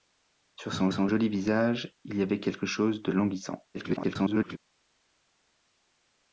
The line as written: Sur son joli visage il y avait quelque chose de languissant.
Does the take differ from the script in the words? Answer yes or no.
yes